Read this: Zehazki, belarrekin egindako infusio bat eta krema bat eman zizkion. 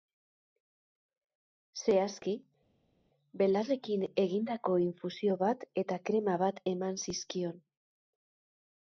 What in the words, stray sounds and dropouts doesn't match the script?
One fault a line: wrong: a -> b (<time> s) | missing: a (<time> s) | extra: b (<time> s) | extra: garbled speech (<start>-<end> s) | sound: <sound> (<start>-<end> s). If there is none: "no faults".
no faults